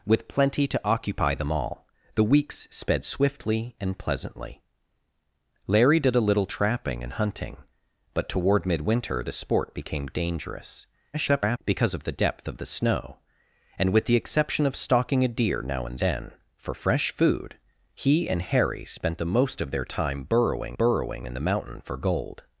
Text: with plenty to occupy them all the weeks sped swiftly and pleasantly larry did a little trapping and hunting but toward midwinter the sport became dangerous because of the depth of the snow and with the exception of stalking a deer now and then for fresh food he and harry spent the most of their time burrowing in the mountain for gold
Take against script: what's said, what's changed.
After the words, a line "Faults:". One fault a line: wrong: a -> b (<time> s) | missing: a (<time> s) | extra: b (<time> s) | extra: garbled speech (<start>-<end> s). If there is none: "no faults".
with plenty to occupy them all the weeks sped swiftly and pleasantly larry did a little trapping and hunting but toward midwinter the sport became dangerous [garbled] because of the depth of the snow and with the exception of stalking a deer now and then for fresh food he and harry spent the most of their time burrowing burrowing in the mountain for gold
Faults:
extra: garbled speech (11.1-11.6 s)
extra: burrowing (20.7 s)